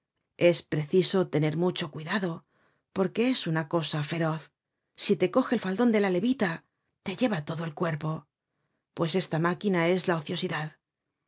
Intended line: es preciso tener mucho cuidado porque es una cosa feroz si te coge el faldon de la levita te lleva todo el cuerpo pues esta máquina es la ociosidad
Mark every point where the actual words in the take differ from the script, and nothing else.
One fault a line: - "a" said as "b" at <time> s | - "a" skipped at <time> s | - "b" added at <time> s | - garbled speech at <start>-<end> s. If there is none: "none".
none